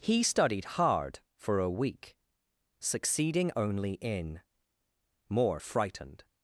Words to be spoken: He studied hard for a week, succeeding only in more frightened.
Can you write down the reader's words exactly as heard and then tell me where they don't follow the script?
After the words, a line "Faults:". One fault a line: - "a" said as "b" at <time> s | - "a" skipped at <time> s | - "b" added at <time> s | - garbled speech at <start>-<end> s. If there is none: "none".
He studied hard for a week, succeeding only in more frightened.
Faults:
none